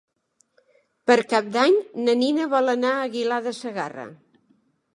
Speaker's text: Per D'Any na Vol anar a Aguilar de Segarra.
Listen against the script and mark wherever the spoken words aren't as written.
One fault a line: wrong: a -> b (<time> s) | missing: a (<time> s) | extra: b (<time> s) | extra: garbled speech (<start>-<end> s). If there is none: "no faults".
extra: Cap (1.3 s)
extra: Nina (2.2 s)